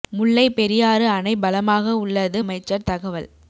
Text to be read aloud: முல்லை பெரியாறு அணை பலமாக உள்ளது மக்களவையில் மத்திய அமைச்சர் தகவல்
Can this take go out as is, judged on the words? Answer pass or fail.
fail